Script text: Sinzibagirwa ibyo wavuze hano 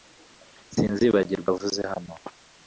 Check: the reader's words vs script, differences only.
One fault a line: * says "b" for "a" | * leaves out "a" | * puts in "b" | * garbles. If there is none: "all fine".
* leaves out "ibyo"